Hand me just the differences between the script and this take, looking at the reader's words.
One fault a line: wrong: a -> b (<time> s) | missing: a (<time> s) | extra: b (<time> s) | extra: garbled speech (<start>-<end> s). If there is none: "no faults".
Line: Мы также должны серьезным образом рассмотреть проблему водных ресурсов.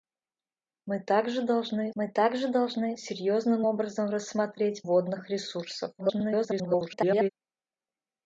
extra: мы также должны (2.0 s)
missing: проблему (4.9 s)
extra: garbled speech (6.0-7.3 s)